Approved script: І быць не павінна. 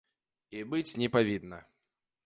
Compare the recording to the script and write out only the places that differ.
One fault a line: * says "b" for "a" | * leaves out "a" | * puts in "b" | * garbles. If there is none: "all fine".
all fine